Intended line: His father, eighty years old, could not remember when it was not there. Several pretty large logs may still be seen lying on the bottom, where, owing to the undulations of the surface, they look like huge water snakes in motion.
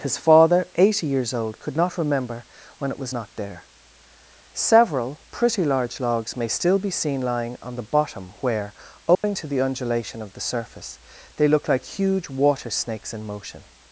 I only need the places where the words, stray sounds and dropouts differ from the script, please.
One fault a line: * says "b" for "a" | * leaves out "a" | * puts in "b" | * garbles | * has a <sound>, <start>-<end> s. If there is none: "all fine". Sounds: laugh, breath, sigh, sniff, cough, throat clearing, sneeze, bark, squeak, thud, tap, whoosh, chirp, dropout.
* has a dropout, 9.1-9.2 s
* says "undulation" for "undulations"